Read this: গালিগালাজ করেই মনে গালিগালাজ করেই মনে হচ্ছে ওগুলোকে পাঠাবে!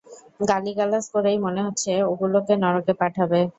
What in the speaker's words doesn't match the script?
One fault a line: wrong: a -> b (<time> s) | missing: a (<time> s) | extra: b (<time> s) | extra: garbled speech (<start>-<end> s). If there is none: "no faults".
missing: গালিগালাজ করেই মনে (1.6 s)
extra: নরকে (2.6 s)